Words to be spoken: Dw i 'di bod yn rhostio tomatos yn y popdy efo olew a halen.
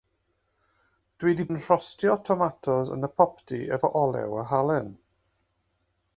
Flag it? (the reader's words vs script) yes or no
yes